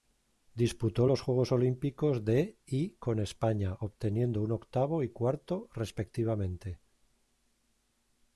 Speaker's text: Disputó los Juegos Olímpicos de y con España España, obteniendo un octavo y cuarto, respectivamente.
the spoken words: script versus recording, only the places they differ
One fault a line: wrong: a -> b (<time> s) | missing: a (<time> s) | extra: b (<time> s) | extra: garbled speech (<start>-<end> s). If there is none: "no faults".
missing: España (3.8 s)